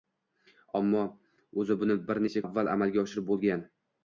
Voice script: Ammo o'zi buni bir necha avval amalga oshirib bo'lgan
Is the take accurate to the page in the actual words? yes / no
yes